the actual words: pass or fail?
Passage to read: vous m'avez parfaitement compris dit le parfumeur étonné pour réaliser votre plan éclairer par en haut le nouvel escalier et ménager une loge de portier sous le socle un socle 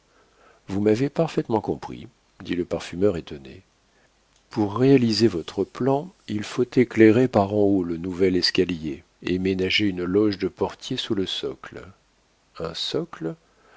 fail